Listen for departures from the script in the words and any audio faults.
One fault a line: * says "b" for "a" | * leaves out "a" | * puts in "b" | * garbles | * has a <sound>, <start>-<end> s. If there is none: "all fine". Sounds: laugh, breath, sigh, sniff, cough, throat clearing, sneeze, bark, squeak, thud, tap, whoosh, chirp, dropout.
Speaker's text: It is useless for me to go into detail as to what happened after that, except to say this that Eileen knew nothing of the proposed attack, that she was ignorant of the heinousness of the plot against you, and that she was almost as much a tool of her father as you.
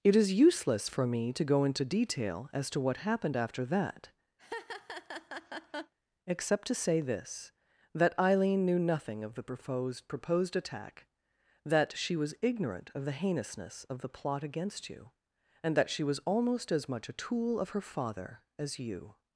* has a laugh, 4.4-5.9 s
* puts in "proposed"